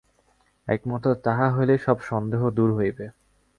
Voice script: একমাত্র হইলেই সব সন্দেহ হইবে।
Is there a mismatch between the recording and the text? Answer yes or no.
yes